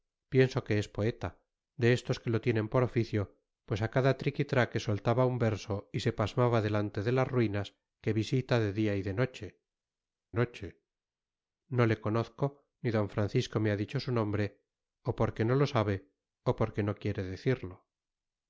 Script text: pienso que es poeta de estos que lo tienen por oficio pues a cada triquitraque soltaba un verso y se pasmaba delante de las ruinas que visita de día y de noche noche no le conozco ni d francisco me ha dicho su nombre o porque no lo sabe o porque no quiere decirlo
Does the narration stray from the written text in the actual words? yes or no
no